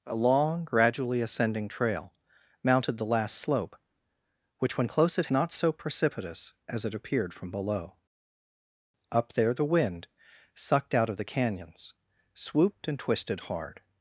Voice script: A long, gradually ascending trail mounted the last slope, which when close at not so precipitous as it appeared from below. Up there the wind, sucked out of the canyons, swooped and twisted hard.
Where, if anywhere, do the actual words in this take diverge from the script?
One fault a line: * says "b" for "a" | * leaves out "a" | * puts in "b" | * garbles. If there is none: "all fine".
all fine